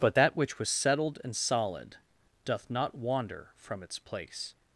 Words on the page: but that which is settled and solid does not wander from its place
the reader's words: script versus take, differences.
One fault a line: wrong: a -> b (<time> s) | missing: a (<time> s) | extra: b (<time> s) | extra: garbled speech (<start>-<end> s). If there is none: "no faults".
wrong: is -> was (0.6 s)
wrong: does -> doth (2.4 s)